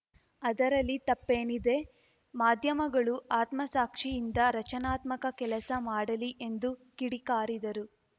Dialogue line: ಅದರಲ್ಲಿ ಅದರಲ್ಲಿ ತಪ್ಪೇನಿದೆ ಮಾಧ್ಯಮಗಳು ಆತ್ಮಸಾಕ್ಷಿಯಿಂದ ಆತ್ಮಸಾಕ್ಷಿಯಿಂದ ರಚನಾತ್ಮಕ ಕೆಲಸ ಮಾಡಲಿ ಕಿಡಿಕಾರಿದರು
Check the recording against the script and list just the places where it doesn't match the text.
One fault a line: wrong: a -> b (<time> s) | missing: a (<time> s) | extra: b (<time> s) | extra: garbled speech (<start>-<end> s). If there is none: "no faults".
missing: ಅದರಲ್ಲಿ (0.9 s)
missing: ಆತ್ಮಸಾಕ್ಷಿಯಿಂದ (4.4 s)
extra: ಎಂದು (6.4 s)